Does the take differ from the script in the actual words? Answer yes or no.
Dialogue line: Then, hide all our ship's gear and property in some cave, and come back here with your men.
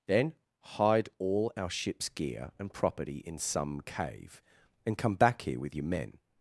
no